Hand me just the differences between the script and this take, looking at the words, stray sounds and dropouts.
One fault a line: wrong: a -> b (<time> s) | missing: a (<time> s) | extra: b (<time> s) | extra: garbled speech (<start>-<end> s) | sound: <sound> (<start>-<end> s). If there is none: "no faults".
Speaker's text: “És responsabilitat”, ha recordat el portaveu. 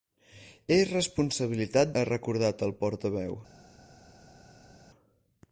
no faults